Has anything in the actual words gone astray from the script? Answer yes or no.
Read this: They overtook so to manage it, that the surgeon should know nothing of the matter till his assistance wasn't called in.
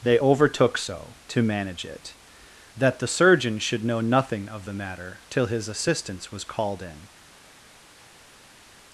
yes